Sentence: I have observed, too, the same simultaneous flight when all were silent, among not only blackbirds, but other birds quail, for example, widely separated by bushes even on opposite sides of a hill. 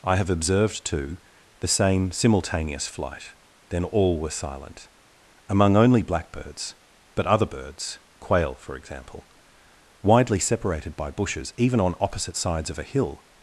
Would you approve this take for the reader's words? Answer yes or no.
no